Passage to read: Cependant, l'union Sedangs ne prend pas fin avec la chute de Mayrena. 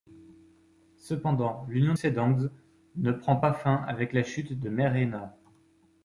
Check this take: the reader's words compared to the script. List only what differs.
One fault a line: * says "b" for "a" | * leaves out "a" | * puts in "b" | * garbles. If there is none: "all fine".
all fine